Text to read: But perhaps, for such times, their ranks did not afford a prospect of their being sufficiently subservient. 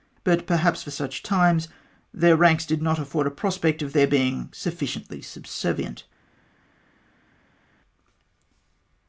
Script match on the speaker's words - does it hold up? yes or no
yes